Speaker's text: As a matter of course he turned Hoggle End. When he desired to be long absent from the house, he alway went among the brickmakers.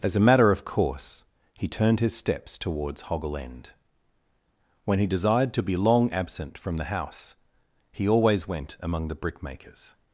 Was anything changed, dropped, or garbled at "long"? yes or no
no